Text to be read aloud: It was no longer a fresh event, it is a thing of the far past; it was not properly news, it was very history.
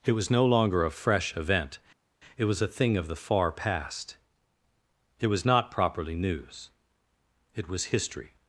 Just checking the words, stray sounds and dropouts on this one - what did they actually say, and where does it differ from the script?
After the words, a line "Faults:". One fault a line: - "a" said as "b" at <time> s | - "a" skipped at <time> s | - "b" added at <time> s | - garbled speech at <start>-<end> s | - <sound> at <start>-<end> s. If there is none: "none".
It was no longer a fresh event, it was a thing of the far past; it was not properly news, it was history.
Faults:
- "is" said as "was" at 2.4 s
- "very" skipped at 7.9 s